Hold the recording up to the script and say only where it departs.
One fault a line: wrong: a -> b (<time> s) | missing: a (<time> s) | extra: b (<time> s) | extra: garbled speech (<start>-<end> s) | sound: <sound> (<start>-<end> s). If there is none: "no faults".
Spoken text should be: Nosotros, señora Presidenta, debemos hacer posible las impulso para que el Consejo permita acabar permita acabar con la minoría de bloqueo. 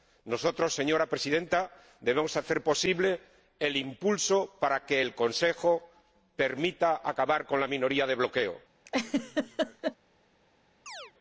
wrong: las -> el (3.6 s)
missing: permita acabar (7.4 s)
sound: laugh (8.9-10.0 s)
sound: chirp (10.9-11.1 s)